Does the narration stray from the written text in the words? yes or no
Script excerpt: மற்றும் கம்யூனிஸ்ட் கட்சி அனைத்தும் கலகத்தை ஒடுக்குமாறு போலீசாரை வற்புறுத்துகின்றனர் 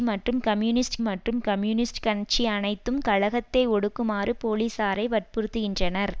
yes